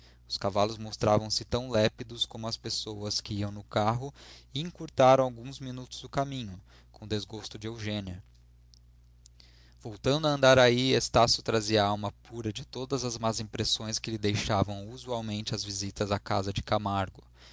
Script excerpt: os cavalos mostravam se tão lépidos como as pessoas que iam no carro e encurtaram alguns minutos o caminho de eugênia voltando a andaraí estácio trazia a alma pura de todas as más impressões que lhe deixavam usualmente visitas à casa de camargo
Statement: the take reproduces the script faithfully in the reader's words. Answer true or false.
false